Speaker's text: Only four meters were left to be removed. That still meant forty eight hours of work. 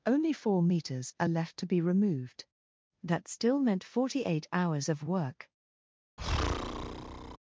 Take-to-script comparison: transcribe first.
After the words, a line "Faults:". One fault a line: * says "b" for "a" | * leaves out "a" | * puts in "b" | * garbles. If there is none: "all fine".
Only four meters are left to be removed. That still meant forty eight hours of work.
Faults:
* says "are" for "were"